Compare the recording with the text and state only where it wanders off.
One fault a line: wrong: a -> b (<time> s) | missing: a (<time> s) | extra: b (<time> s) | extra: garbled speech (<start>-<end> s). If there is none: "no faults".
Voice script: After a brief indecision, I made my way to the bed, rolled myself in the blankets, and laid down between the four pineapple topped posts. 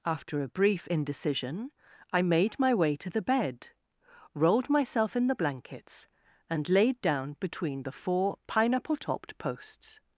no faults